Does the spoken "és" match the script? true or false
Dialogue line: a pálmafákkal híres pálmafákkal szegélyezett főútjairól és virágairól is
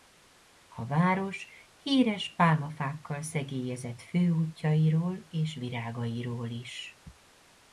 true